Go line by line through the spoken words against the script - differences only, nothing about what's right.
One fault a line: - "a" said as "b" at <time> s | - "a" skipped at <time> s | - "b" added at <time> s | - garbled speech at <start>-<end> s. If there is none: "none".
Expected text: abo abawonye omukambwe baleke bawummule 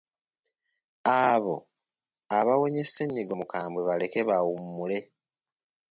- "ssennyiga" added at 2.9 s